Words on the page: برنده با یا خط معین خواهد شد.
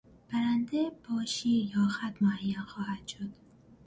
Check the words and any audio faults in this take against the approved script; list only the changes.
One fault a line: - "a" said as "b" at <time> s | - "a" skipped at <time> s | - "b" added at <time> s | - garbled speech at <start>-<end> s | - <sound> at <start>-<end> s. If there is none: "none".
- "شیر" added at 1.2 s